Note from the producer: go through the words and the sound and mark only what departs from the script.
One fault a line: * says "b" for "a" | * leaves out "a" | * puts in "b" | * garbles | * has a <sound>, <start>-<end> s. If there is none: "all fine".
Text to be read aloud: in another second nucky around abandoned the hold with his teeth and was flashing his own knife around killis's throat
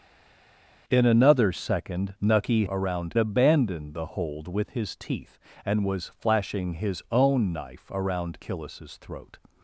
all fine